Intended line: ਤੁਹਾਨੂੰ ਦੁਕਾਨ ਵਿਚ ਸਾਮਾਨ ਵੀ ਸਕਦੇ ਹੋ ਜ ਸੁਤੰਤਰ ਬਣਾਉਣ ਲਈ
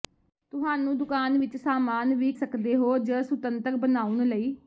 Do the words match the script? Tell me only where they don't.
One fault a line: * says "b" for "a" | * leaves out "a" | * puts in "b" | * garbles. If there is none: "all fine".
all fine